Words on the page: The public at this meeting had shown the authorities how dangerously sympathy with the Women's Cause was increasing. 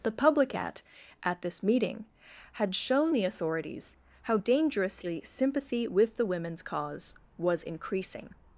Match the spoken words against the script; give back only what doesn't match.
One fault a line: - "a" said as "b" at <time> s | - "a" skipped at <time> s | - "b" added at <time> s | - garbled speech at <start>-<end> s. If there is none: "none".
- "at" added at 1.2 s